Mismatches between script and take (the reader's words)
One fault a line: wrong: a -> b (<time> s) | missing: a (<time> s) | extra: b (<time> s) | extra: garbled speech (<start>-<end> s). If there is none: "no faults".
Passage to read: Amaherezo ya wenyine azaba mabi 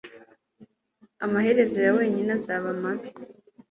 no faults